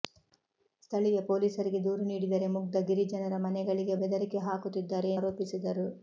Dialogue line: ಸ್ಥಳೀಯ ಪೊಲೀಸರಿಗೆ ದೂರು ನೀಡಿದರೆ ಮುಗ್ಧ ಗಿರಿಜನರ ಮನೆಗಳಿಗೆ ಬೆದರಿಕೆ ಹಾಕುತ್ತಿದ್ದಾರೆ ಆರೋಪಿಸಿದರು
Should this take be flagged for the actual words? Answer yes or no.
no